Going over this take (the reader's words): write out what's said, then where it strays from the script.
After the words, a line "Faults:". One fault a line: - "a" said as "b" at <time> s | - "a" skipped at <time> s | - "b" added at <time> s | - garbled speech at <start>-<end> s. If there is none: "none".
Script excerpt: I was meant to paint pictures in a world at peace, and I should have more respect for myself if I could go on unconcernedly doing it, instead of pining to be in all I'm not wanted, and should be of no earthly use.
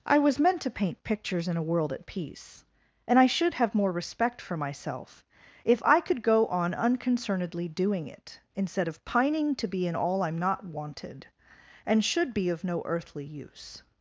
I was meant to paint pictures in a world at peace, and I should have more respect for myself if I could go on unconcernedly doing it, instead of pining to be in all I'm not wanted, and should be of no earthly use.
Faults:
none